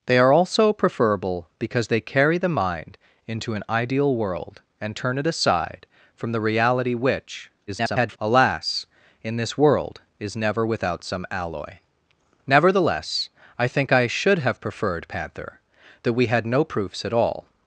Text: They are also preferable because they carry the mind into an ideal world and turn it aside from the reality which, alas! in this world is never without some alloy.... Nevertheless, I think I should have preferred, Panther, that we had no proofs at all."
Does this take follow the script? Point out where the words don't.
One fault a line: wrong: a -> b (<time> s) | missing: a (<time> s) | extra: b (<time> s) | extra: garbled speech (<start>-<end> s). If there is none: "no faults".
extra: garbled speech (7.7-8.2 s)